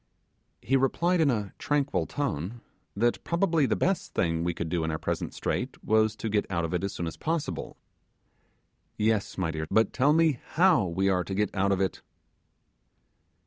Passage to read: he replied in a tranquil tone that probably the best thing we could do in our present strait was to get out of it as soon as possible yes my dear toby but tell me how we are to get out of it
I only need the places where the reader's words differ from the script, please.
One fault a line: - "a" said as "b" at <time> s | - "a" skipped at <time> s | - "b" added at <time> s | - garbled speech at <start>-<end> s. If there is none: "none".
- "toby" skipped at 9.7 s